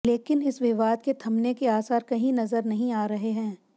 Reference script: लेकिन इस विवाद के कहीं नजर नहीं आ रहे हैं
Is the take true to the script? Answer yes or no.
no